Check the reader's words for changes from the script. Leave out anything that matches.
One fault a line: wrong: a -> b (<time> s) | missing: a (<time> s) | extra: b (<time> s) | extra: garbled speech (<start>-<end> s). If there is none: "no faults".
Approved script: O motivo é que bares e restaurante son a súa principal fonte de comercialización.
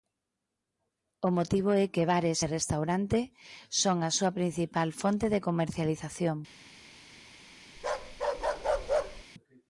no faults